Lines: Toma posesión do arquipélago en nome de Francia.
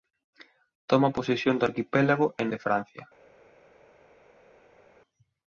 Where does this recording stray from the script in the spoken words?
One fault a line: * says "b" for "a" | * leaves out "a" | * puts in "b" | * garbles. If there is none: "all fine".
* leaves out "nome"